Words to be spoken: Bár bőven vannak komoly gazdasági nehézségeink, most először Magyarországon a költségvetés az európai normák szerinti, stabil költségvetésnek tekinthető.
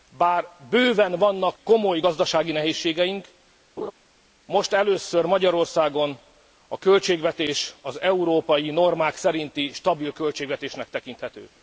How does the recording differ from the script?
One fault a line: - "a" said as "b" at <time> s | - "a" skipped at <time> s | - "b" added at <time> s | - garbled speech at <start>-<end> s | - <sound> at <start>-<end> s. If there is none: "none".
- laugh at 3.8-3.9 s